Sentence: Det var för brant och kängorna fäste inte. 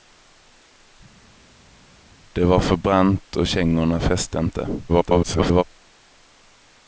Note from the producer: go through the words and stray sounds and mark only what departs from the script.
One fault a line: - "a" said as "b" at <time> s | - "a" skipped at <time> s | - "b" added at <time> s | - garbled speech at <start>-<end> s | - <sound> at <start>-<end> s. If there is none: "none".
- garbled speech at 4.9-5.6 s